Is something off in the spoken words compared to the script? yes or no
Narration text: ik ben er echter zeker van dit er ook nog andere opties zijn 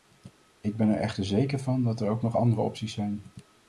yes